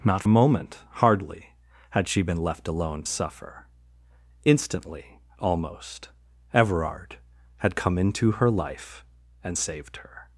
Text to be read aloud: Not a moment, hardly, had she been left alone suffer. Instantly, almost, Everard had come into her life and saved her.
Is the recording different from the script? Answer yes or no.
no